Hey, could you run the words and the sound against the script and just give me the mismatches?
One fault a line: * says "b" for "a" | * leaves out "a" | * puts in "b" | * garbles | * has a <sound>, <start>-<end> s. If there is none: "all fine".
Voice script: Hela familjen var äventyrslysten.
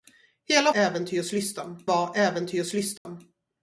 * says "äventyrslysten" for "familjen"
* has a dropout, 3.0-3.1 s